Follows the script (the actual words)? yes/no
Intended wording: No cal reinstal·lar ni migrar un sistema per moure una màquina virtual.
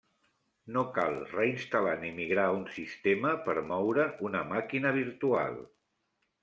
yes